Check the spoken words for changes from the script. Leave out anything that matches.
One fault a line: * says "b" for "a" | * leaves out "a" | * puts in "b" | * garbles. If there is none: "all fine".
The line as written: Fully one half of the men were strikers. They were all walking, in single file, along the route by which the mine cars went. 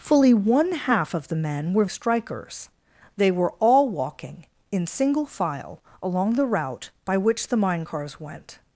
all fine